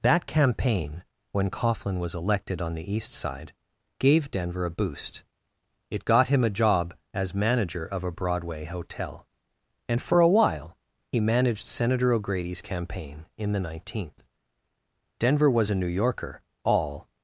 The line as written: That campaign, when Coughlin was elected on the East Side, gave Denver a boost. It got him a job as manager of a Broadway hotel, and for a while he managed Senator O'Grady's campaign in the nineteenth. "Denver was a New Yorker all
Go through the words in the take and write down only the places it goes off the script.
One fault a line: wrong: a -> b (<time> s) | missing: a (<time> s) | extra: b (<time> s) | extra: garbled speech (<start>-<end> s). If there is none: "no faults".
no faults